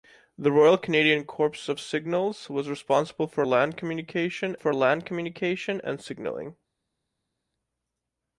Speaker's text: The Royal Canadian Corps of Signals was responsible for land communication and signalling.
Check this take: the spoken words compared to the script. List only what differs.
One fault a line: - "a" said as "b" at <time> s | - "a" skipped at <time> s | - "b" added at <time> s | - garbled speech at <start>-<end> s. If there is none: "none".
- "for land communication" added at 4.6 s